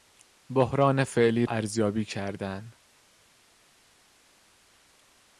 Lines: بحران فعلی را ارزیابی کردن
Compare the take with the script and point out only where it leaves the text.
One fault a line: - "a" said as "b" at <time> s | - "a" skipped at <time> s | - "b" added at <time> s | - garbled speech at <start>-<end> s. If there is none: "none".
- "را" skipped at 1.4 s